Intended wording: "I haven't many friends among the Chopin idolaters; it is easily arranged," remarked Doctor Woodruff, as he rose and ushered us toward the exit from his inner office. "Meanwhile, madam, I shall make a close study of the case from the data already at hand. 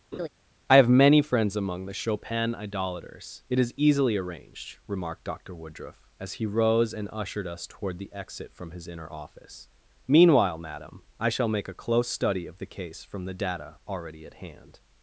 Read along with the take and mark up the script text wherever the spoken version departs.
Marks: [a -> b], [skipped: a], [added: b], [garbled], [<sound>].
[laugh] "I [haven't -> have] many friends among the Chopin idolaters; it is easily arranged," remarked Doctor Woodruff, as he rose and ushered us toward the exit from his inner office. "Meanwhile, madam, I shall make a close study of the case from the data already at hand.